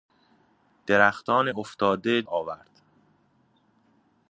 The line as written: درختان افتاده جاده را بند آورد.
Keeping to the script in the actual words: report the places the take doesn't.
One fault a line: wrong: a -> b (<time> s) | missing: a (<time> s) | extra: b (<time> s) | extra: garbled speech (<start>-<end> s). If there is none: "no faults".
missing: جاده را بند (2.2 s)